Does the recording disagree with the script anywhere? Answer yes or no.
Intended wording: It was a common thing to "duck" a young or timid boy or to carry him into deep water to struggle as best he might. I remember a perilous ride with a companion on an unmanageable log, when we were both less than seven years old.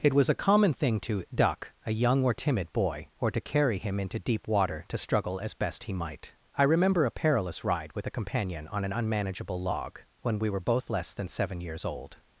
no